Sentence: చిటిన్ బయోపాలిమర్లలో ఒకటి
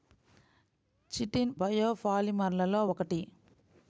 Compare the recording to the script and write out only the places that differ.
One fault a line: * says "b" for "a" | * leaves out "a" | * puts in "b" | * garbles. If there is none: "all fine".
all fine